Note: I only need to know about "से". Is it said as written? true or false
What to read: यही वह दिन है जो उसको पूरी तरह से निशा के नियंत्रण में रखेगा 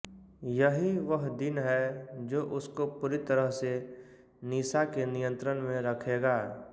true